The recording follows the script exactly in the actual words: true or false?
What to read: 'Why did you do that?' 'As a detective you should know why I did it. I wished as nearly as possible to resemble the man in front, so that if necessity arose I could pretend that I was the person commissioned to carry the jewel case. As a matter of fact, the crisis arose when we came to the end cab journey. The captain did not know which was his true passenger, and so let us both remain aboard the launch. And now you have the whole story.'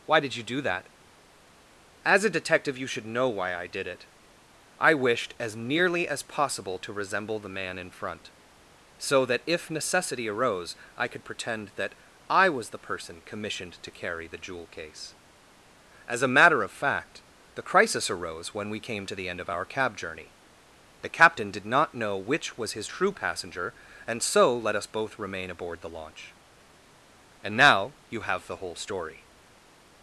false